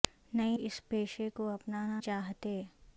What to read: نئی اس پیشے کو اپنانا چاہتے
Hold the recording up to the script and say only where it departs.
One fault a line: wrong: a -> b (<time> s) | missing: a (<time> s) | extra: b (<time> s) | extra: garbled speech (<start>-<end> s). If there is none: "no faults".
no faults